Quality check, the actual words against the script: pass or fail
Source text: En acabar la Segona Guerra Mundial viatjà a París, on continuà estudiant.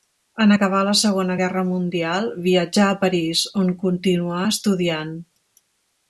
pass